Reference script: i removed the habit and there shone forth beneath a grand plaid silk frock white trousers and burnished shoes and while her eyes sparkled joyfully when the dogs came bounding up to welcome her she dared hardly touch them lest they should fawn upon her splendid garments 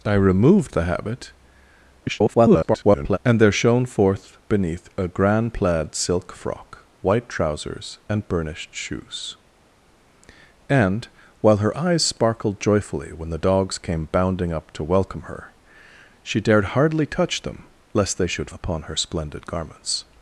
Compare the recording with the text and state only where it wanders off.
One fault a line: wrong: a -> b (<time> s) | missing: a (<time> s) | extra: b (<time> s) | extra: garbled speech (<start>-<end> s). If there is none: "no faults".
extra: garbled speech (2.0-3.2 s)
missing: fawn (18.5 s)